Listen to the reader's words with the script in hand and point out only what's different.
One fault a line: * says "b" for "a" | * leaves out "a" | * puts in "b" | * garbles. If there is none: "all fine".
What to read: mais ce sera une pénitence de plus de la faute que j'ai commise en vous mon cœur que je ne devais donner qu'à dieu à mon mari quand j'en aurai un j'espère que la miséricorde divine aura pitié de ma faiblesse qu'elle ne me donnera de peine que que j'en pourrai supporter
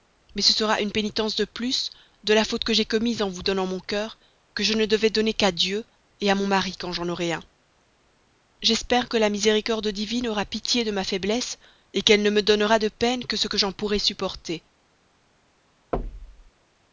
* puts in "donnant"
* puts in "ce"